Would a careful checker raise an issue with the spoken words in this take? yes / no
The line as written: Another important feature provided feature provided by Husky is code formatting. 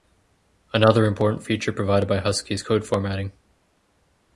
yes